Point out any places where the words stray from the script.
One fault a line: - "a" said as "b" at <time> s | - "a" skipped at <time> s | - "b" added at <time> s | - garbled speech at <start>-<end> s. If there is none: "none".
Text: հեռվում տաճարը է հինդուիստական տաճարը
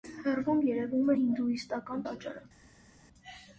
- "տաճարը" said as "երևում" at 0.7 s